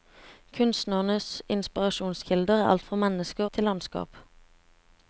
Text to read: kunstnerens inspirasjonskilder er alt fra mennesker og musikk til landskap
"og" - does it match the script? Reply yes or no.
no